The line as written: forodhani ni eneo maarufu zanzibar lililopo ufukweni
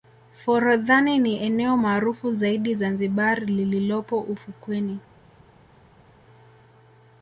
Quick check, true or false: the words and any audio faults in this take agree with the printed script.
false